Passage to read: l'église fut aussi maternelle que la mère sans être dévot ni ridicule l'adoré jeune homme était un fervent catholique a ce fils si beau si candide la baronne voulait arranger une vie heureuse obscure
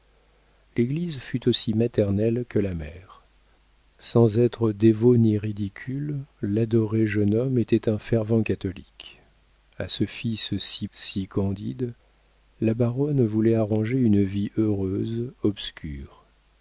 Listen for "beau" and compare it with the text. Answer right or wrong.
wrong